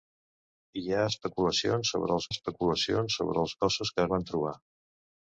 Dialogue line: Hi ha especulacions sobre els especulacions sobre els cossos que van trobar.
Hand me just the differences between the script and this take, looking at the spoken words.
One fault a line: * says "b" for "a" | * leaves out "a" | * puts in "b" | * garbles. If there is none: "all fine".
all fine